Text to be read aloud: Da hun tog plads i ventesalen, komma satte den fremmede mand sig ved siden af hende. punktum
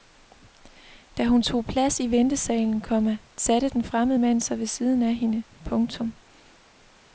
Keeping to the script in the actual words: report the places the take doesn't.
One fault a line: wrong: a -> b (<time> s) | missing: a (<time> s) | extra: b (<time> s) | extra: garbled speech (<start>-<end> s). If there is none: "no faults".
no faults